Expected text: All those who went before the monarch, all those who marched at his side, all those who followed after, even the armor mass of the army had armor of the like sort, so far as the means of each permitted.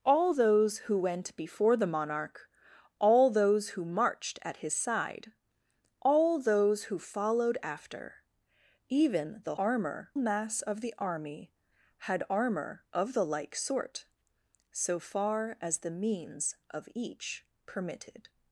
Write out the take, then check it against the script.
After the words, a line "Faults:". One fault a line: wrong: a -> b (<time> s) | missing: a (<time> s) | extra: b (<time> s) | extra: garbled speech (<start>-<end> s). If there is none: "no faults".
All those who went before the monarch, all those who marched at his side, all those who followed after, even the armor mass of the army had armor of the like sort, so far as the means of each permitted.
Faults:
no faults